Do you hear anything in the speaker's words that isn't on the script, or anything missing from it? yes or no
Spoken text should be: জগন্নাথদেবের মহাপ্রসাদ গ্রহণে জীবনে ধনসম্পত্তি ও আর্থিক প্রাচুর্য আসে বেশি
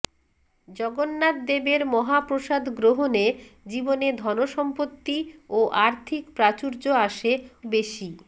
no